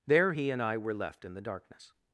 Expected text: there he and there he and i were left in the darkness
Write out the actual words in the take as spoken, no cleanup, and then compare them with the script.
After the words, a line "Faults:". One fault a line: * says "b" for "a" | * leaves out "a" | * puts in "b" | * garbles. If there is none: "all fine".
there he and i were left in the darkness
Faults:
* leaves out "there he and"